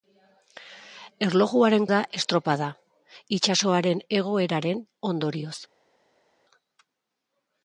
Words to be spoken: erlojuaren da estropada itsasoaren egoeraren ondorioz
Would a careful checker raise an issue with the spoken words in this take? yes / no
no